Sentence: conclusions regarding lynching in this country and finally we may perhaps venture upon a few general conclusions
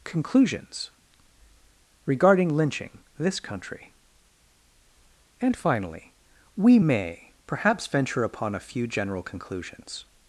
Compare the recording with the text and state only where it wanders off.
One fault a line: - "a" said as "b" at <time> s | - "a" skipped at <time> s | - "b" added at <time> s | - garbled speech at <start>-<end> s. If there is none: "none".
- "in" skipped at 3.0 s